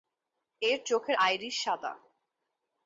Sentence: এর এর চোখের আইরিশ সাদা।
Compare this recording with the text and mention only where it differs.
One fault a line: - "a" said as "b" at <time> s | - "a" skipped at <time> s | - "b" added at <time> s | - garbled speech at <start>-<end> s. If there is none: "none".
- "এর" skipped at 0.8 s